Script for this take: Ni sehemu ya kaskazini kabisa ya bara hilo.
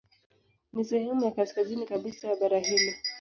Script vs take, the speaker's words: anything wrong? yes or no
no